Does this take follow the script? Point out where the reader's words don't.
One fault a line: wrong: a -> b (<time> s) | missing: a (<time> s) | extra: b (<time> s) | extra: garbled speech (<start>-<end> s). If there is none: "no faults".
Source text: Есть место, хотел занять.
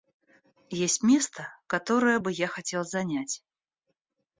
extra: которое бы я (1.7 s)